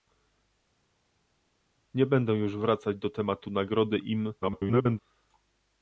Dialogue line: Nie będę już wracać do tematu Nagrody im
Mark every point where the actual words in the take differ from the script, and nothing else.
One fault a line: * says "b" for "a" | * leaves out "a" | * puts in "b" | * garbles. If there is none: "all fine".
* garbles